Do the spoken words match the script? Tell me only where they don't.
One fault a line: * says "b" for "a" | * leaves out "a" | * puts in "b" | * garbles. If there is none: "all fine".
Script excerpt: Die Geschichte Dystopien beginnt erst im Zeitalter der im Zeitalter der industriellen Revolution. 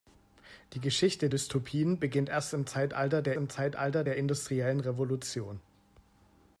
all fine